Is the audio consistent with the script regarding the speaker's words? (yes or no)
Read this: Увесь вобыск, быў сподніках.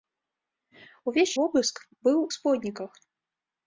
yes